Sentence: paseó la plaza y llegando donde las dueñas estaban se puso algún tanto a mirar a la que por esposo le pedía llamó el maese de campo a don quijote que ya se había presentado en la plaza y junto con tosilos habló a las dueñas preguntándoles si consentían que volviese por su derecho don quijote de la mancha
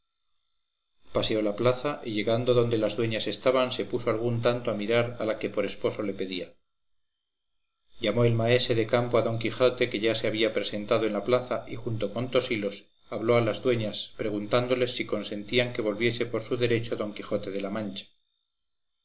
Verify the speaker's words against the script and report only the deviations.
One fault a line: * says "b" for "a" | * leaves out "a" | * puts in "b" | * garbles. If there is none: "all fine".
all fine